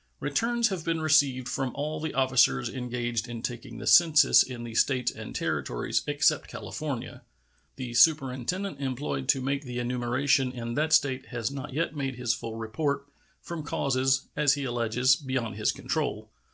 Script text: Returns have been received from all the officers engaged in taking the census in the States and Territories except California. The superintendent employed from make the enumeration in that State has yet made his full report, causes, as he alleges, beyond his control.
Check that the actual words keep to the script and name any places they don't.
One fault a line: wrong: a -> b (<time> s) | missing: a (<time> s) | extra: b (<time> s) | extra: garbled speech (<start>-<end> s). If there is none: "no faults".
wrong: from -> to (9.3 s)
extra: not (11.5 s)
extra: from (13.4 s)